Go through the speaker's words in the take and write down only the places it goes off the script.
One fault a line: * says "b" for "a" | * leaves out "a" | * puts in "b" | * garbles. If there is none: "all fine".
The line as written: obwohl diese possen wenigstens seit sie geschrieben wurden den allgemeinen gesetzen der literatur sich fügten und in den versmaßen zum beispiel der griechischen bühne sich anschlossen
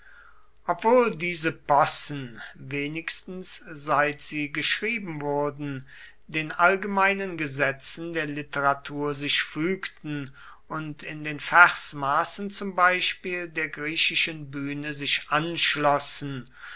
all fine